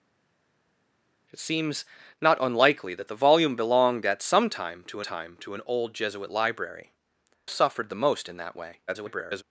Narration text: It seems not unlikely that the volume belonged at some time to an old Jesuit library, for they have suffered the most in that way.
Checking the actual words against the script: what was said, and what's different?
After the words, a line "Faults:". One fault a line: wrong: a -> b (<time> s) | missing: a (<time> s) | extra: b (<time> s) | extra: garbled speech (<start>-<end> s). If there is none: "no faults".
It seems not unlikely that the volume belonged at some time to time to an old Jesuit library, suffered the most in that way. [garbled]
Faults:
extra: time to (5.0 s)
missing: for they have (6.9 s)
extra: garbled speech (8.9-9.4 s)